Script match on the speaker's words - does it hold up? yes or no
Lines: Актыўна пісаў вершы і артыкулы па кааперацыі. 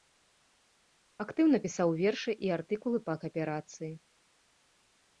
yes